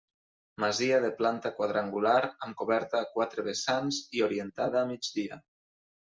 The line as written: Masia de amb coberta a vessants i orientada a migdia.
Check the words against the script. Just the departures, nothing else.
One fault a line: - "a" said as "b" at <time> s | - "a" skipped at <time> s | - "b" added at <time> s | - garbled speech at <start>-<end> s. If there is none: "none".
- "planta quadrangular" added at 1.2 s
- "quatre" added at 3.1 s